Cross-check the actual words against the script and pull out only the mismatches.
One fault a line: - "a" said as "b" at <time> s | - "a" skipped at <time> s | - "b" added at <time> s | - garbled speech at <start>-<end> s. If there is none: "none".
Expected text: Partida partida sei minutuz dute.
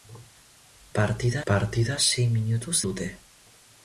none